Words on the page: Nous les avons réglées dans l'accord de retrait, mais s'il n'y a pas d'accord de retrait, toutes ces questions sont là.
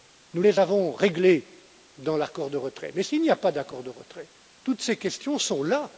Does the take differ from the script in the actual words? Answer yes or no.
no